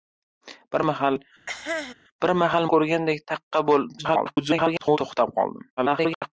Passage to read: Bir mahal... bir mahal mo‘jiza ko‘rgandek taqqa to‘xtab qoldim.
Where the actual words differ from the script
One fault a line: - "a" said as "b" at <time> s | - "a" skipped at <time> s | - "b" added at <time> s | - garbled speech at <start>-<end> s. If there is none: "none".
- "mo‘jiza" skipped at 2.7 s
- garbled speech at 4.0-5.0 s
- garbled speech at 5.8-6.3 s